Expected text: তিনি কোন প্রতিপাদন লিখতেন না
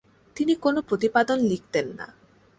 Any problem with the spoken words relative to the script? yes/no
no